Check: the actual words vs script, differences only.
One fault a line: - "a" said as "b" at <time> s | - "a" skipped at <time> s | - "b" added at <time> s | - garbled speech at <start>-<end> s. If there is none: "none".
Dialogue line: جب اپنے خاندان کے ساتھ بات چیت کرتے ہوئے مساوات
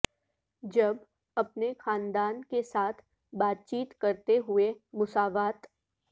none